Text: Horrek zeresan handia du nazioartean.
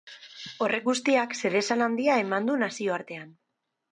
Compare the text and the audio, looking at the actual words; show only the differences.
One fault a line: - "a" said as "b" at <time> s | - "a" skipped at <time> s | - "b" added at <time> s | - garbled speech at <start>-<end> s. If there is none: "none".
- "guztiak" added at 0.9 s
- "eman" added at 2.3 s